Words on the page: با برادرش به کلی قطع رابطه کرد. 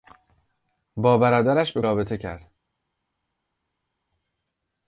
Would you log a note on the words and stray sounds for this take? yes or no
yes